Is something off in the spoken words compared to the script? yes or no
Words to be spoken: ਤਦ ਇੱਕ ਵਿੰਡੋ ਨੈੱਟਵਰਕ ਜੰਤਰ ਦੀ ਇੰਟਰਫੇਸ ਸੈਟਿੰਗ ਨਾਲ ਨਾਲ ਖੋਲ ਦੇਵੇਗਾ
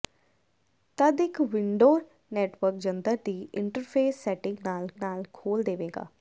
no